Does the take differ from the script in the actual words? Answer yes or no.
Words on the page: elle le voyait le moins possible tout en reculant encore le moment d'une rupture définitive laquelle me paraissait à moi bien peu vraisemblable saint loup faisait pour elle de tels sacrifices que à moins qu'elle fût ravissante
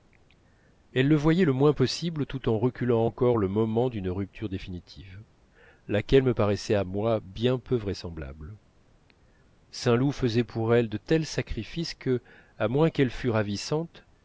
no